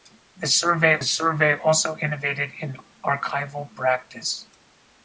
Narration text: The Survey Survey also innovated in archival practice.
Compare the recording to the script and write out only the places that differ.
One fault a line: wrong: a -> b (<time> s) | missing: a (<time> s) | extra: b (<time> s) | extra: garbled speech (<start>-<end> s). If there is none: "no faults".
no faults